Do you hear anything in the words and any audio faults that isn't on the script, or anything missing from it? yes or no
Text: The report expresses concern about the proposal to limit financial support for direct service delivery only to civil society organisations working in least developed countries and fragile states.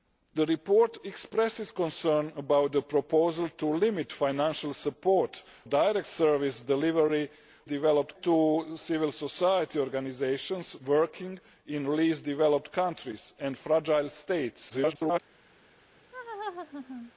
yes